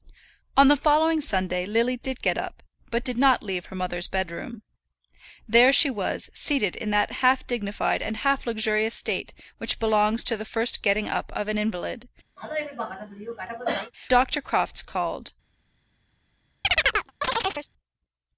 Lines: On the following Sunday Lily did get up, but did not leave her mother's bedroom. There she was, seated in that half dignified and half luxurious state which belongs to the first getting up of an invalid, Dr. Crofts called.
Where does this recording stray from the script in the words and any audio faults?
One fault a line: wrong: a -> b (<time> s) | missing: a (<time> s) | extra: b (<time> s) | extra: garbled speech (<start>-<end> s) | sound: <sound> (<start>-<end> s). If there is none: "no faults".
sound: cough (12.4-13.9 s)
sound: chirp (16.6-17.7 s)